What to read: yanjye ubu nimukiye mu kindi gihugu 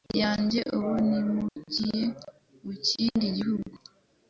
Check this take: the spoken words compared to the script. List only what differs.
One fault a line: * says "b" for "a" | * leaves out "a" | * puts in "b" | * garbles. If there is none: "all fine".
all fine